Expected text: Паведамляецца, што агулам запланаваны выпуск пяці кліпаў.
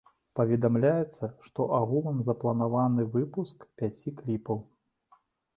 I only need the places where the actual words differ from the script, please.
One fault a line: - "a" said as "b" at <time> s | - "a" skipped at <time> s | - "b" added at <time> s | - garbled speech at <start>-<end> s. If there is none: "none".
none